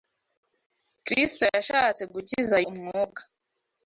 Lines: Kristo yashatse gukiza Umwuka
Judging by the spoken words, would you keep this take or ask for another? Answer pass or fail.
pass